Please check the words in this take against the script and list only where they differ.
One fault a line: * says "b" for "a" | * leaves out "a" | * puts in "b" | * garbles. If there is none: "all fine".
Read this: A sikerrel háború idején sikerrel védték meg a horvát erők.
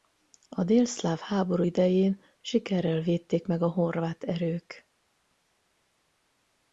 * says "délszláv" for "sikerrel"